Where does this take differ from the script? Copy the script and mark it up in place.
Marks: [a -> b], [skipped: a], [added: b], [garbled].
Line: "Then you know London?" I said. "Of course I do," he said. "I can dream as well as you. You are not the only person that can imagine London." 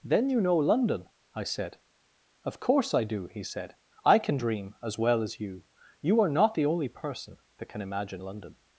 "Then you know London?" I said. "Of course I do," he said. "I can dream as well as you. You are not the only person that can imagine London."